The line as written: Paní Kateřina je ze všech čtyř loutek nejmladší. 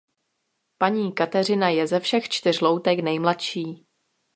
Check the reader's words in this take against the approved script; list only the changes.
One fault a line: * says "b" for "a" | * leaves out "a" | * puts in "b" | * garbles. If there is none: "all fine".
all fine